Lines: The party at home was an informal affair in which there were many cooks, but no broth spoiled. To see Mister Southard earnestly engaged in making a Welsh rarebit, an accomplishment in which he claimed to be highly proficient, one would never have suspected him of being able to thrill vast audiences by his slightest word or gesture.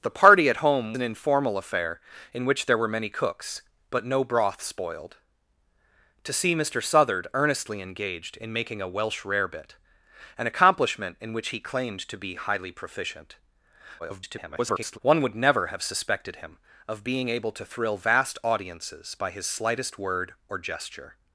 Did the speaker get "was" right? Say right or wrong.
wrong